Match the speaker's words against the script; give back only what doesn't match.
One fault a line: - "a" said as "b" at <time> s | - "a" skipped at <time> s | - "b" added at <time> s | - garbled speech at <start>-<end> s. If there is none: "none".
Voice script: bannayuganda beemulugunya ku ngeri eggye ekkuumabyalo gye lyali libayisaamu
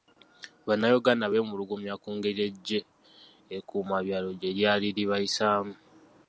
none